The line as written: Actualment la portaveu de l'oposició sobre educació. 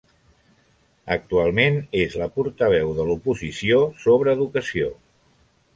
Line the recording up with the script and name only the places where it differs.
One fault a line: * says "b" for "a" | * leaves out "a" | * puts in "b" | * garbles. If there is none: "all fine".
* puts in "és"